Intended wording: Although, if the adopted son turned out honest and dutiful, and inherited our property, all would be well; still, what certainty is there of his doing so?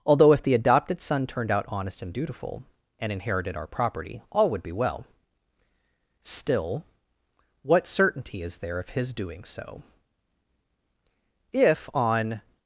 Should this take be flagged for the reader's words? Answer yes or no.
yes